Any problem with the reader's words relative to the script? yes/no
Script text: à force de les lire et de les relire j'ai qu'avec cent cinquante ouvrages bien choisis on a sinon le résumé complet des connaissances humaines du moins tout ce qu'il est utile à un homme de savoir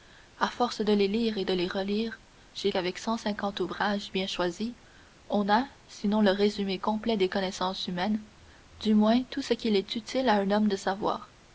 no